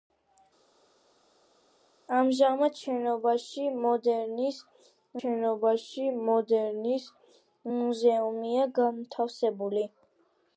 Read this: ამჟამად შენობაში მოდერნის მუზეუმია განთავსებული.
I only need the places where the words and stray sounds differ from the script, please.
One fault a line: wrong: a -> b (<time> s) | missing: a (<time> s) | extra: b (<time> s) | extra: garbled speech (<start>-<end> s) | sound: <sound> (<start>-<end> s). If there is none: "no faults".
extra: შენობაში მოდერნის (5.2 s)